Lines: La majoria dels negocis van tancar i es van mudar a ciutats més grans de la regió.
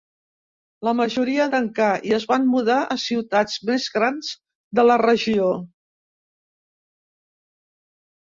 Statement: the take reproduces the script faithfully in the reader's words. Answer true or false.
false